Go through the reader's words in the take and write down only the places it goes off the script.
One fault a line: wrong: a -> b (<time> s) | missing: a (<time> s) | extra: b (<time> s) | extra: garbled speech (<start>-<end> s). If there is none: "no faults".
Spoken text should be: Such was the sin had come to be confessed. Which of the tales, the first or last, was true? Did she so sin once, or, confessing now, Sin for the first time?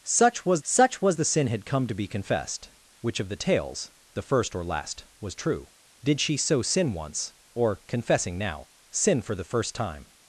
extra: such was (0.6 s)